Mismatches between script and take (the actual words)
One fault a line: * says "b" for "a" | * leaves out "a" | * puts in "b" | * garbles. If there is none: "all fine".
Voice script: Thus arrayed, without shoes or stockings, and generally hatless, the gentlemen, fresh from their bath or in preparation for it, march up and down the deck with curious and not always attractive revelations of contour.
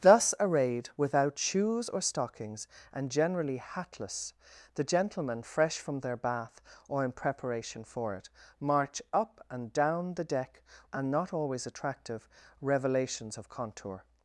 * leaves out "with curious"